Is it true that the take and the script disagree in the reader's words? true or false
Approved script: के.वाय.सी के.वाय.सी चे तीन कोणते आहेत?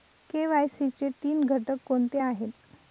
true